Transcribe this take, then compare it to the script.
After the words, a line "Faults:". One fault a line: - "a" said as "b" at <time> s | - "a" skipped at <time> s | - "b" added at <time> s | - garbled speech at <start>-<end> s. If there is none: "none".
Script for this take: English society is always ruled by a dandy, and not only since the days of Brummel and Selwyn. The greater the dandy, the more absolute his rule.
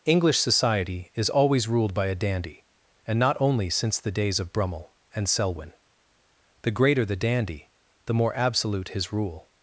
English society is always ruled by a dandy, and not only since the days of Brummel and Selwyn. The greater the dandy, the more absolute his rule.
Faults:
none